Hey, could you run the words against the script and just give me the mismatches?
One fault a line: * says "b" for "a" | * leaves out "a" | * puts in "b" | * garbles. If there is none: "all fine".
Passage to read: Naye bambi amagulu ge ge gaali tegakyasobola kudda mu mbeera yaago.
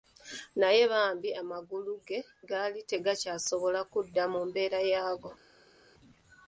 * leaves out "ge"